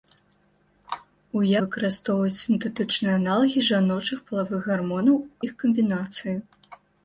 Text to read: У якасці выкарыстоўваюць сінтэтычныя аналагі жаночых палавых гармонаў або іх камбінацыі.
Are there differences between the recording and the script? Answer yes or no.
yes